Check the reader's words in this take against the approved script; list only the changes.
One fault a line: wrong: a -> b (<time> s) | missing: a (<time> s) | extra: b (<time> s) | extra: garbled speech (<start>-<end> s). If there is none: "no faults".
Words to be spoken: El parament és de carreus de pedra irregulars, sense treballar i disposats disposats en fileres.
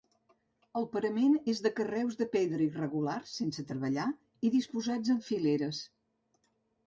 missing: disposats (5.1 s)